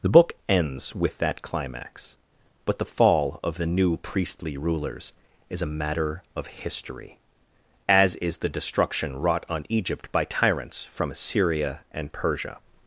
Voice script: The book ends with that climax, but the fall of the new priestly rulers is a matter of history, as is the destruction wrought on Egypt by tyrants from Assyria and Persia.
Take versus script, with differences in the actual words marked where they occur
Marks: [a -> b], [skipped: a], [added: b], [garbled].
The book ends with that climax, but the fall of the new priestly rulers is a matter of history, as is the destruction wrought on Egypt by tyrants from Assyria and Persia.